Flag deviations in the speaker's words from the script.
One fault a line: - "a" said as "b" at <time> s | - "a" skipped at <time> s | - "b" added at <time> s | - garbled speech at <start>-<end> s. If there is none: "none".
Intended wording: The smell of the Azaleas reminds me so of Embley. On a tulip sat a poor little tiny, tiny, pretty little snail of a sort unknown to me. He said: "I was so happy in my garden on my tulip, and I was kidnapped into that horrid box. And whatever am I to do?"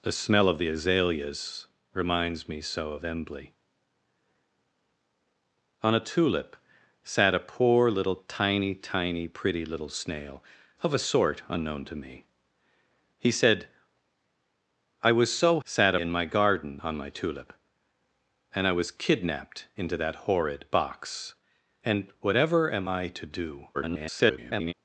- "happy" said as "sat" at 15.6 s
- garbled speech at 23.7-24.7 s